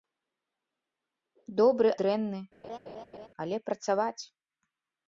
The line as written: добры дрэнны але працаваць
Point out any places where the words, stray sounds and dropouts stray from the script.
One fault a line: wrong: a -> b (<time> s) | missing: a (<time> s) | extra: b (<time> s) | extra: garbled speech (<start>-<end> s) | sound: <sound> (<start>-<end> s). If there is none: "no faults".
sound: laugh (2.6-3.3 s)